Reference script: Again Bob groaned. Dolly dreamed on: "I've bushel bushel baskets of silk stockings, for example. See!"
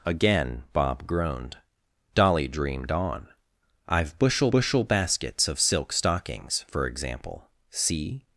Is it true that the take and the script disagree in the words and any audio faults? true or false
false